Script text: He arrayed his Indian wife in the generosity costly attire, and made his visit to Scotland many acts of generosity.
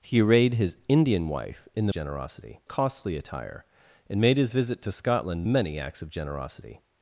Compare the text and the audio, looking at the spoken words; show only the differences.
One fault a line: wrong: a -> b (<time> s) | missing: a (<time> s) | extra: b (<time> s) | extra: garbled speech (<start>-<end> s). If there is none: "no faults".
no faults